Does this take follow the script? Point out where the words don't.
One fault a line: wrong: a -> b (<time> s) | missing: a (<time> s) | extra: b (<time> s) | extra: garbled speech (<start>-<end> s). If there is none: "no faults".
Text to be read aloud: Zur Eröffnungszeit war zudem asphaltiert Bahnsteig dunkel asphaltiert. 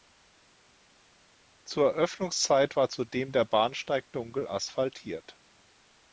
wrong: asphaltiert -> der (3.3 s)